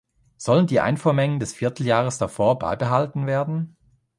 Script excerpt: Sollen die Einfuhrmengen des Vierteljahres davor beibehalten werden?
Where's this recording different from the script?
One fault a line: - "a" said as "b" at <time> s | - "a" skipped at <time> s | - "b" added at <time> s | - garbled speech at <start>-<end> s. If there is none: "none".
none